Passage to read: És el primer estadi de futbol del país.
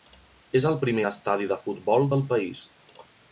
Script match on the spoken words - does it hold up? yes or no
yes